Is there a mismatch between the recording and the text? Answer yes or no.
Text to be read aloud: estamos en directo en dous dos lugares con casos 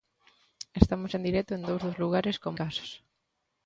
no